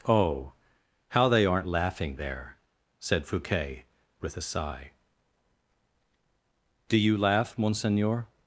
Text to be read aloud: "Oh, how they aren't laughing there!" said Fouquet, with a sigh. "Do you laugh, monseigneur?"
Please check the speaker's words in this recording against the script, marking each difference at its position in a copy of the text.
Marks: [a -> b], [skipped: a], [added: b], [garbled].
"Oh, how they aren't laughing there!" said Fouquet, with a sigh. "Do you laugh, monseigneur?"